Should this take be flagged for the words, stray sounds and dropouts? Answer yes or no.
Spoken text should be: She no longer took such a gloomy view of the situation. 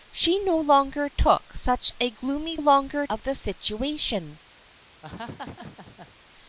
yes